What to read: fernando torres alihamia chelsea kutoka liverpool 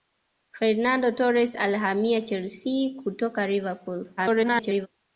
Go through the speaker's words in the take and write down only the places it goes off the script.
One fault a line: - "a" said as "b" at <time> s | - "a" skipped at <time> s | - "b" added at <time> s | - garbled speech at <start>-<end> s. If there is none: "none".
- garbled speech at 4.2-4.9 s